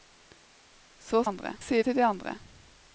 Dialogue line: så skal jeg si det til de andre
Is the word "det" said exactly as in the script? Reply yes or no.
no